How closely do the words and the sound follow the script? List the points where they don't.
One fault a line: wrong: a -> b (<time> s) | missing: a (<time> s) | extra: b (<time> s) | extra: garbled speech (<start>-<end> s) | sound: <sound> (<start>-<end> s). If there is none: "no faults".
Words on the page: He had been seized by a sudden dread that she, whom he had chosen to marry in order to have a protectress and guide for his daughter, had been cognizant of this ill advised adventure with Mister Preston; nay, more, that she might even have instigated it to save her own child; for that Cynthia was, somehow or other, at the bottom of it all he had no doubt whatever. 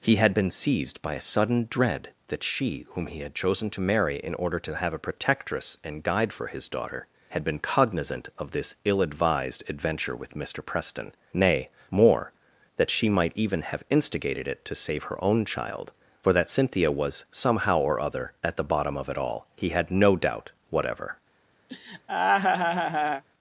sound: laugh (21.7-23.2 s)